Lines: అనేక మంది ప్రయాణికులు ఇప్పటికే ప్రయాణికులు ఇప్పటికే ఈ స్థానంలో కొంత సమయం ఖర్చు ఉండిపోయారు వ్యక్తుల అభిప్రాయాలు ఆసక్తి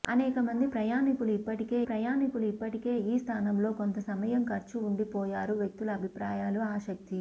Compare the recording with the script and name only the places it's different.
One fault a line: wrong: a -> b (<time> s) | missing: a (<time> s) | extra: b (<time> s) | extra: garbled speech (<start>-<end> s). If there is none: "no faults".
no faults